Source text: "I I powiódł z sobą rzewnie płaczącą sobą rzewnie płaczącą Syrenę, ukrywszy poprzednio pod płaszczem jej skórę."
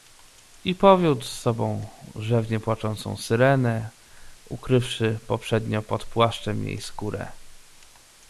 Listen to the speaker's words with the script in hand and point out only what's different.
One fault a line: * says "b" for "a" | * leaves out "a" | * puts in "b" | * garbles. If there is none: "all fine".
* leaves out "I"
* leaves out "sobą rzewnie płaczącą"